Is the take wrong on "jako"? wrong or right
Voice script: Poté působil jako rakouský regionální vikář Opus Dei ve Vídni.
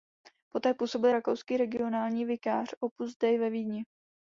wrong